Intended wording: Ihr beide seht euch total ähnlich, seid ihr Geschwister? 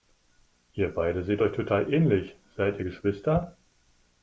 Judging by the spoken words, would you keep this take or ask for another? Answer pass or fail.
pass